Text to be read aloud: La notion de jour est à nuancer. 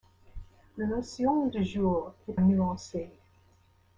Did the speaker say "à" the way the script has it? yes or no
no